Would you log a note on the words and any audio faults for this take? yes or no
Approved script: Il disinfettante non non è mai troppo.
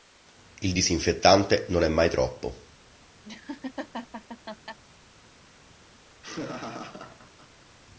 yes